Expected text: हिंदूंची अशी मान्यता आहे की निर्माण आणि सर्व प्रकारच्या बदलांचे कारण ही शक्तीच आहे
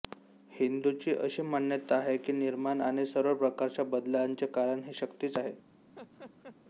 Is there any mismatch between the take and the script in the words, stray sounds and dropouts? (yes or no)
yes